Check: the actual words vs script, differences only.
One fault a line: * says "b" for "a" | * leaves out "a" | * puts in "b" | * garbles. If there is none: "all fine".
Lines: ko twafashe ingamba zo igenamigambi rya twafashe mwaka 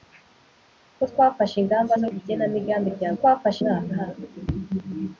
all fine